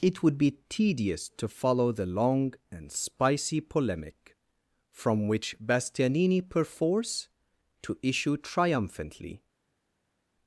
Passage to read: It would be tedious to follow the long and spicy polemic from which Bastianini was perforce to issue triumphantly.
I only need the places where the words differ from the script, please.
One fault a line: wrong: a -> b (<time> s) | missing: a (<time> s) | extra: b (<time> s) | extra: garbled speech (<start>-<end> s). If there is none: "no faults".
missing: was (6.5 s)